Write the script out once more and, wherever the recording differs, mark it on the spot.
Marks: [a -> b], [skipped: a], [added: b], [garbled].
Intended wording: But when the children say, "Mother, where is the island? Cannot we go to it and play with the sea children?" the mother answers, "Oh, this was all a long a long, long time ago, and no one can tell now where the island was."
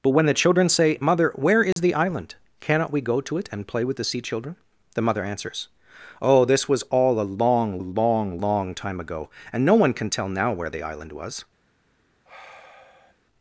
But when the children say, "Mother, where is the island? Cannot we go to it and play with the sea children?" the mother answers, "Oh, this was all a long a long, long time ago, and no one can tell now where the island was."